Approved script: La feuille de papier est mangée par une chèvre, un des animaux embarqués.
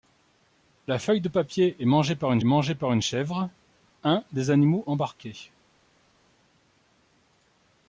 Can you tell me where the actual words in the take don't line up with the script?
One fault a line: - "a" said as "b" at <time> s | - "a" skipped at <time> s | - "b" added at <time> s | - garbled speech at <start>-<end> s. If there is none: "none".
- "mangée par une" added at 2.4 s